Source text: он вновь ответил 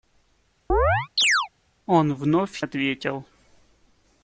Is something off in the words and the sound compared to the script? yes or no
yes